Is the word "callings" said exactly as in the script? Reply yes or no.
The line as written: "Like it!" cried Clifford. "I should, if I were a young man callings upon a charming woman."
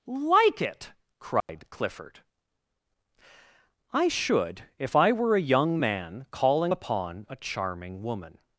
no